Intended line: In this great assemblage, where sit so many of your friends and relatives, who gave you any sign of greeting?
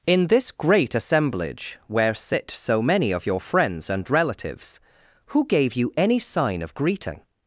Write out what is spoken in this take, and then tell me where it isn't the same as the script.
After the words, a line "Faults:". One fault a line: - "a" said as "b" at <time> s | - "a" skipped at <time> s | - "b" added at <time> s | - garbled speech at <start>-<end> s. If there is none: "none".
In this great assemblage, where sit so many of your friends and relatives, who gave you any sign of greeting?
Faults:
none